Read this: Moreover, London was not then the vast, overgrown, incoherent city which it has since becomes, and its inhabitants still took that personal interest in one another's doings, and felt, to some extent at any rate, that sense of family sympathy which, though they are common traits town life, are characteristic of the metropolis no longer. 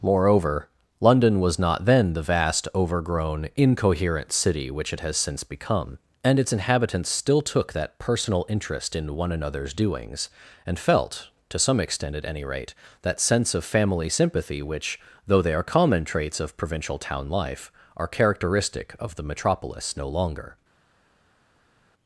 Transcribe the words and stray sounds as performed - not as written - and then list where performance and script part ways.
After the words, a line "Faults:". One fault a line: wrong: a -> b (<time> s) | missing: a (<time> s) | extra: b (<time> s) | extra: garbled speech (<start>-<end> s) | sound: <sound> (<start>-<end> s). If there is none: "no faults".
Moreover, London was not then the vast, overgrown, incoherent city which it has since become, and its inhabitants still took that personal interest in one another's doings, and felt, to some extent at any rate, that sense of family sympathy which, though they are common traits of provincial town life, are characteristic of the metropolis no longer.
Faults:
wrong: becomes -> become (5.4 s)
extra: of provincial (16.4 s)